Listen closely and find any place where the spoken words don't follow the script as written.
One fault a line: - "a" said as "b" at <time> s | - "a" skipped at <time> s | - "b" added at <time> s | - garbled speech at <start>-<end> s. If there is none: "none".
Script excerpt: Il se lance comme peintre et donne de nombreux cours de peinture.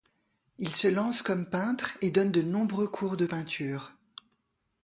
none